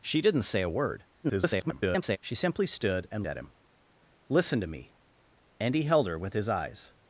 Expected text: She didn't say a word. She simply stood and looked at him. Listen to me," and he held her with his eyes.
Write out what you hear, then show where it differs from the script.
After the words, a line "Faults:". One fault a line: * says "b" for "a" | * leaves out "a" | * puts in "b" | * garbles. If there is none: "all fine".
She didn't say a word. [garbled] She simply stood and at him. Listen to me," and he held her with his eyes.
Faults:
* garbles
* leaves out "looked"